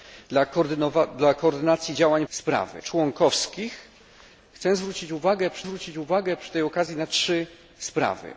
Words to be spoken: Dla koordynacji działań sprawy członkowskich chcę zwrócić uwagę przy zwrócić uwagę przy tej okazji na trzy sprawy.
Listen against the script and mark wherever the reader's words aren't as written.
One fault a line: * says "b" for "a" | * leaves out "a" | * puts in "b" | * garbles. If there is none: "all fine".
all fine